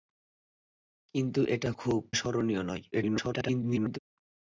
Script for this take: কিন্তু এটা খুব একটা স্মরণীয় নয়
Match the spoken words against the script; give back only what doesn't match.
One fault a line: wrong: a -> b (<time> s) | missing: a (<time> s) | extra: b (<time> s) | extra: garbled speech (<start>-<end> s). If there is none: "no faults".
missing: একটা (2.0 s)
extra: garbled speech (2.9-4.0 s)